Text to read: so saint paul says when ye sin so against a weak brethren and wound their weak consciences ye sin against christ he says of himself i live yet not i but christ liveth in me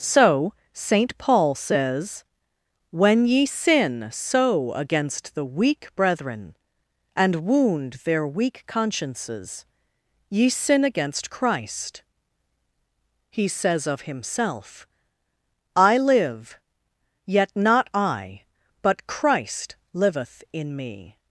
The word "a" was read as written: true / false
false